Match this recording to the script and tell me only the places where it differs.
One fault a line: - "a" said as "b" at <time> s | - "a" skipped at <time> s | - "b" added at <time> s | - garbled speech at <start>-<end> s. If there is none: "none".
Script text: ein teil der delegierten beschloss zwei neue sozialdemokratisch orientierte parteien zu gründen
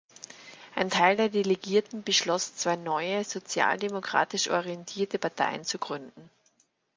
none